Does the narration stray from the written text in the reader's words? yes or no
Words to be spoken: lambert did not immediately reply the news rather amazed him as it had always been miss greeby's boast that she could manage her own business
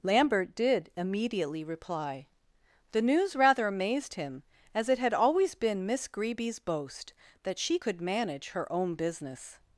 yes